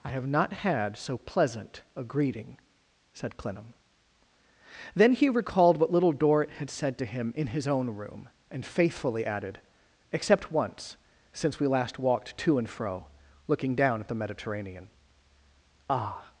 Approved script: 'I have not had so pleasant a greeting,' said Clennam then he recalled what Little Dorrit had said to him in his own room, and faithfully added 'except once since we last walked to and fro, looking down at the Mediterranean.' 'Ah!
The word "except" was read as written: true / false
true